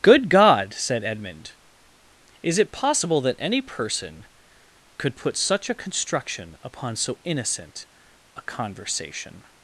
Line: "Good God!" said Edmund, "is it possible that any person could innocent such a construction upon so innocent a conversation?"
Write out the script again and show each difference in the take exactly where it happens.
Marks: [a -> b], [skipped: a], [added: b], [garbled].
"Good God!" said Edmund, "is it possible that any person could [innocent -> put] such a construction upon so innocent a conversation?"